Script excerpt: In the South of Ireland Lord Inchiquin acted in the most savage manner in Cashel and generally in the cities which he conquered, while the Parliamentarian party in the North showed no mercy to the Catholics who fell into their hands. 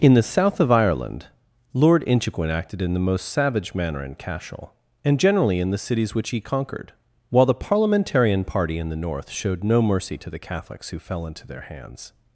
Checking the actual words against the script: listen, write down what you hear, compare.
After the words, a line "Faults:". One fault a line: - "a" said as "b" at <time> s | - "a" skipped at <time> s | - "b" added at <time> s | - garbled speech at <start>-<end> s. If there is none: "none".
In the South of Ireland Lord Inchiquin acted in the most savage manner in Cashel and generally in the cities which he conquered, while the Parliamentarian party in the North showed no mercy to the Catholics who fell into their hands.
Faults:
none